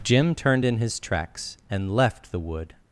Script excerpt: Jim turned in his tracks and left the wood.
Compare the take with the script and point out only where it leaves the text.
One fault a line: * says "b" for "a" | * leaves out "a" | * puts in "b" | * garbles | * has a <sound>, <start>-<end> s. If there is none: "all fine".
all fine